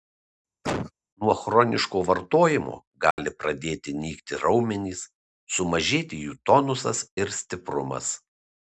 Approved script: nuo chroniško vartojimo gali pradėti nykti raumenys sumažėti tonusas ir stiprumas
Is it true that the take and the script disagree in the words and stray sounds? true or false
true